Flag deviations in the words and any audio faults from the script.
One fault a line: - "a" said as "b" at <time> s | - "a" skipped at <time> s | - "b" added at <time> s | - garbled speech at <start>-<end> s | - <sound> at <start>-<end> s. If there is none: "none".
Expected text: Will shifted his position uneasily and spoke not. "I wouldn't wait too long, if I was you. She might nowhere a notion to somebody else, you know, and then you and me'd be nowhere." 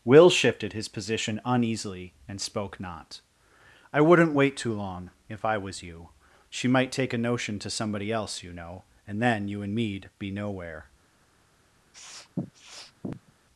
- "nowhere" said as "take" at 6.9 s
- sniff at 11.9-13.3 s